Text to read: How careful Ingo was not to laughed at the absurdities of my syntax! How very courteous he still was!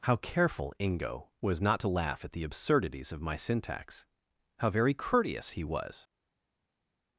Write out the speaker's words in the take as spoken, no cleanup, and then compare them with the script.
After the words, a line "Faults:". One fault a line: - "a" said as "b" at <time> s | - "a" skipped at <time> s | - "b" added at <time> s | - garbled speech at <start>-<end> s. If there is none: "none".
How careful Ingo was not to laugh at the absurdities of my syntax! How very courteous he was!
Faults:
- "laughed" said as "laugh" at 1.9 s
- "still" skipped at 5.6 s